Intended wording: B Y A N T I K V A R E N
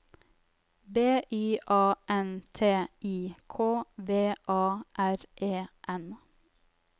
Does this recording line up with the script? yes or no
yes